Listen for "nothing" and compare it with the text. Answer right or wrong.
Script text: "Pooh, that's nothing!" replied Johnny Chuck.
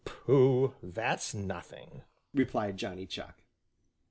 right